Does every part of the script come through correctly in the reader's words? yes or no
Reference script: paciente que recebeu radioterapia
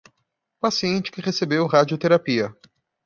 yes